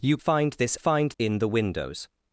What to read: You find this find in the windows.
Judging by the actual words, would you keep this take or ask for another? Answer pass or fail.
pass